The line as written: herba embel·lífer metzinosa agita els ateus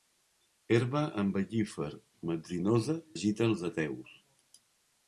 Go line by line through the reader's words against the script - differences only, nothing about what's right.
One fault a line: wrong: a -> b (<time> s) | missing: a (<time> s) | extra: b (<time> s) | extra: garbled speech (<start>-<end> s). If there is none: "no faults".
no faults